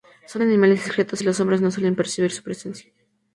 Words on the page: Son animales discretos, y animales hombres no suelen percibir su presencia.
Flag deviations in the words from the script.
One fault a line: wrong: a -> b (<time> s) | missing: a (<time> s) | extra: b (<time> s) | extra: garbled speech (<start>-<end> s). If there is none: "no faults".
wrong: animales -> los (1.2 s)